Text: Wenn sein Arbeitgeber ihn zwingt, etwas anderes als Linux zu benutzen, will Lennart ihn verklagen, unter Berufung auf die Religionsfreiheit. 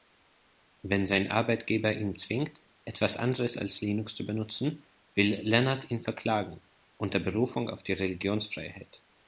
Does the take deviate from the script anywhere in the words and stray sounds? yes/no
no